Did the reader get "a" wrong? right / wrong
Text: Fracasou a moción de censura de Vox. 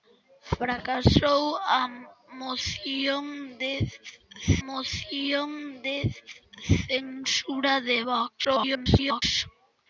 right